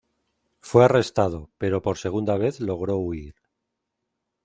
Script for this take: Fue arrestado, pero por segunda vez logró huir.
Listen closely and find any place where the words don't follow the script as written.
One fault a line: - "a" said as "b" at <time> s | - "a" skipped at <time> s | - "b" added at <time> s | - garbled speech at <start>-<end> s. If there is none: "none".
none